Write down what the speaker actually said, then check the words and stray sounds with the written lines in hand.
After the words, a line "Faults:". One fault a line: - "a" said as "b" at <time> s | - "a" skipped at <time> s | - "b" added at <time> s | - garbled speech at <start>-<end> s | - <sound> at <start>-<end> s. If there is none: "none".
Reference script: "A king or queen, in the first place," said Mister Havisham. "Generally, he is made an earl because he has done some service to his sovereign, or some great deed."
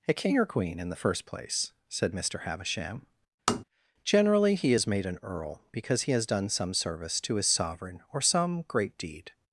"A king or queen, in the first place," said Mister Havisham. "Generally, he is made an earl because he has done some service to his sovereign, or some great deed."
Faults:
- tap at 3.5-3.6 s